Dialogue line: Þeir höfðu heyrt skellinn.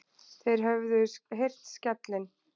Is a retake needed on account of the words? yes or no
no